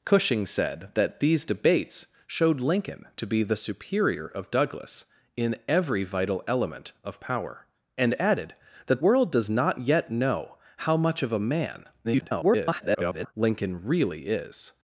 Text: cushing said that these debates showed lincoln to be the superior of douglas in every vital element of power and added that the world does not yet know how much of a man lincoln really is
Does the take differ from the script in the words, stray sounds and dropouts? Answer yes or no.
yes